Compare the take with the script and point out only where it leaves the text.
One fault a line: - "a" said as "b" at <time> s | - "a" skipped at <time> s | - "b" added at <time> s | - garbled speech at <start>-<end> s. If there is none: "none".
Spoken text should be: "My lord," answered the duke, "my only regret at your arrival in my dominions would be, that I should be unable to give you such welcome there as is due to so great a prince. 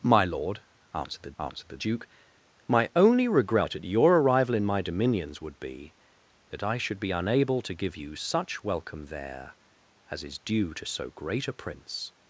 - "answered the" added at 1.4 s